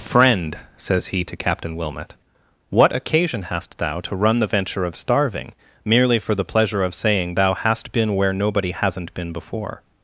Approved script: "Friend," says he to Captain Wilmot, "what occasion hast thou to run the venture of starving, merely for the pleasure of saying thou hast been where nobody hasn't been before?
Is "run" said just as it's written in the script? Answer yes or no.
yes